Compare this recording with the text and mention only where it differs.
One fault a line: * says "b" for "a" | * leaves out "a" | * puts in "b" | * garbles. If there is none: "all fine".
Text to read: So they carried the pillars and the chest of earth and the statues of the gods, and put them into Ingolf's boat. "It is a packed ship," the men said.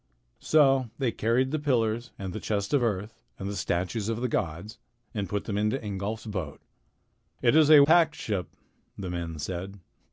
all fine